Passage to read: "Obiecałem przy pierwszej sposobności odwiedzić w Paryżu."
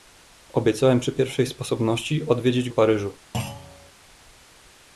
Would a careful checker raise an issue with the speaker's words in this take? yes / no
no